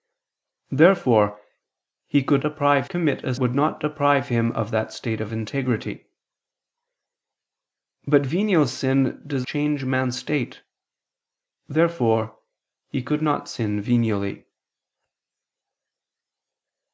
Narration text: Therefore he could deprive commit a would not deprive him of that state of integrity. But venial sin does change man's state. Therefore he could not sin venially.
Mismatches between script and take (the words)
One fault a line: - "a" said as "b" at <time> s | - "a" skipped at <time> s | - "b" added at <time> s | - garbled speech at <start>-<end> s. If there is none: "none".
none